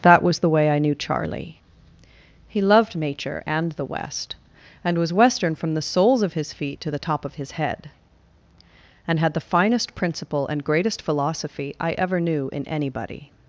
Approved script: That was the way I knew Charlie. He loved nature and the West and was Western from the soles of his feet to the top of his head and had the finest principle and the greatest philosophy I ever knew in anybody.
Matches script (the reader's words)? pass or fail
fail